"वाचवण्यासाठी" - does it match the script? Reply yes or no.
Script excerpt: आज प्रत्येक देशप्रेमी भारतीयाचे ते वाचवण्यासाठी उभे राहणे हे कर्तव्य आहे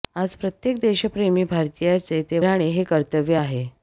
no